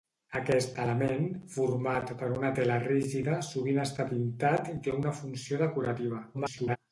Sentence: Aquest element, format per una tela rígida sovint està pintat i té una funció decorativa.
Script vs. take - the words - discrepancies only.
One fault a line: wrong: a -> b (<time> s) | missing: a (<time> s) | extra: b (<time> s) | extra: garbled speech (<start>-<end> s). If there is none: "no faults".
extra: garbled speech (6.3-6.8 s)